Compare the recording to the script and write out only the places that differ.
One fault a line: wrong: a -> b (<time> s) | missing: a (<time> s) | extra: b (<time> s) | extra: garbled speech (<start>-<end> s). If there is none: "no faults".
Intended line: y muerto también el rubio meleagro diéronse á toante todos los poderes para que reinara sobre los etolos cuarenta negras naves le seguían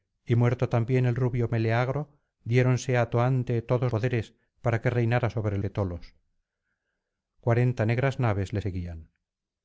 missing: los (3.9 s)
missing: los (5.6 s)